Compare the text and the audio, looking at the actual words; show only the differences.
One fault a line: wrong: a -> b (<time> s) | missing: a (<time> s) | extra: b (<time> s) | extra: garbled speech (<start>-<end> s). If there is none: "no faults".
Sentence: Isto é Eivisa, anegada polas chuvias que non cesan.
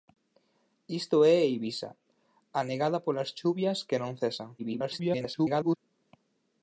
extra: garbled speech (4.6-5.8 s)